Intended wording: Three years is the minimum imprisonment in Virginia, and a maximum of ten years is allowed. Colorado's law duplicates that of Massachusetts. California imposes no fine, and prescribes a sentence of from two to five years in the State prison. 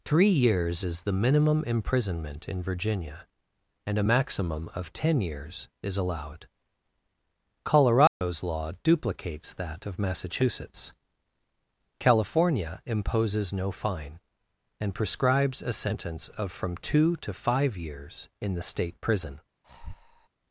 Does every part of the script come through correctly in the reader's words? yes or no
yes